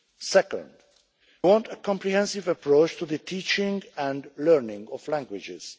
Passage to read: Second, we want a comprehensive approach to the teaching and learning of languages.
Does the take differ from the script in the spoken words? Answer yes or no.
yes